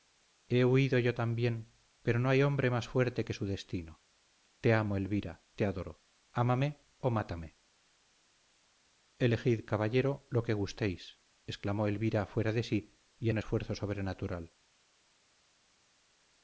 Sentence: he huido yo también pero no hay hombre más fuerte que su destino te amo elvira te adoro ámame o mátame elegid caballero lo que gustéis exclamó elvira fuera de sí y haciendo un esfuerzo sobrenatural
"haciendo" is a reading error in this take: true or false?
true